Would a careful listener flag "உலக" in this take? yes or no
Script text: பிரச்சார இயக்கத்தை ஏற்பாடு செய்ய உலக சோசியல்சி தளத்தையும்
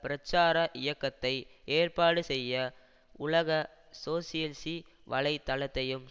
no